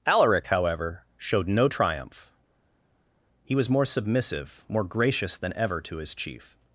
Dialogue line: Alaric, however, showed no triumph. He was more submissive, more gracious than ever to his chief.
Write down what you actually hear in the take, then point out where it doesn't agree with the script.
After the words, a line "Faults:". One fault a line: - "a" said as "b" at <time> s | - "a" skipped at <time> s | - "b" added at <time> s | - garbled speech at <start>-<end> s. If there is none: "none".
Alaric, however, showed no triumph. He was more submissive, more gracious than ever to his chief.
Faults:
none